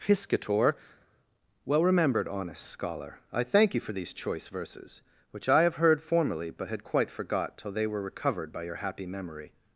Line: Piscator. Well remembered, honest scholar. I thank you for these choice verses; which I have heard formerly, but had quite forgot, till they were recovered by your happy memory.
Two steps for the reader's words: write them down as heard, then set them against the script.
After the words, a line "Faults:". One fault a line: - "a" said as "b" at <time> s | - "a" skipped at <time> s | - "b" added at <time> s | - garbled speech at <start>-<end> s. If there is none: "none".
Piscator. Well remembered, honest scholar. I thank you for these choice verses; which I have heard formerly, but had quite forgot, till they were recovered by your happy memory.
Faults:
none